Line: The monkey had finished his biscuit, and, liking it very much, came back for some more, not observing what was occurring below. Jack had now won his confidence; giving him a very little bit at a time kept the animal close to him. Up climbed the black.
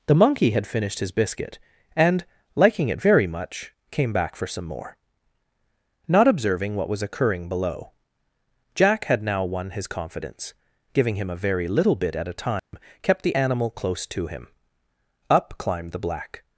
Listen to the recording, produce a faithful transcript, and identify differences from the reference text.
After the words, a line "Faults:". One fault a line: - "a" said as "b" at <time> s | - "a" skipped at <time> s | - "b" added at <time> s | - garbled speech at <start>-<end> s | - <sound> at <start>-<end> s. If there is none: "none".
The monkey had finished his biscuit, and, liking it very much, came back for some more, not observing what was occurring below. Jack had now won his confidence; giving him a very little bit at a time kept the animal close to him. Up climbed the black.
Faults:
- dropout at 12.6-12.7 s